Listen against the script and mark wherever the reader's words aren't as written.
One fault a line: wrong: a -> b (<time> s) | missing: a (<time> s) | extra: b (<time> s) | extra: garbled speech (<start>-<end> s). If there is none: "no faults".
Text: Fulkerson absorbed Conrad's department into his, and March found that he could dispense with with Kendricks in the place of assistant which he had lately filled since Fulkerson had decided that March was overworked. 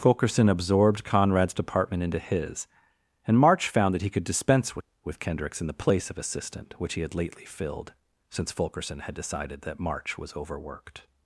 no faults